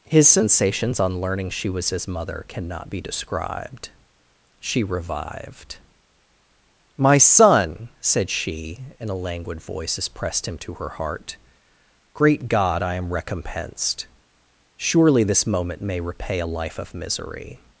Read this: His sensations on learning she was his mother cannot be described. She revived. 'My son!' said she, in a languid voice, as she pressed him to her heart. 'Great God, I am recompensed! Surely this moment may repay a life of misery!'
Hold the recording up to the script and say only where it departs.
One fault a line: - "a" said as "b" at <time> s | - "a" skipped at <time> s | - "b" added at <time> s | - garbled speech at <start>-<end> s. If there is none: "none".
- "she" skipped at 10.1 s